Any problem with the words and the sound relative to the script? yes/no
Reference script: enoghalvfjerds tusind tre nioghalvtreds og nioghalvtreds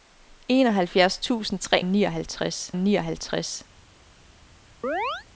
yes